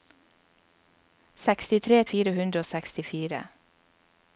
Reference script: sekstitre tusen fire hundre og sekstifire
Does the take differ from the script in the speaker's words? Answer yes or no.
yes